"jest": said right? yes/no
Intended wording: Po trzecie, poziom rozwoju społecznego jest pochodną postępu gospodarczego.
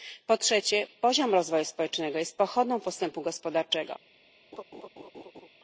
yes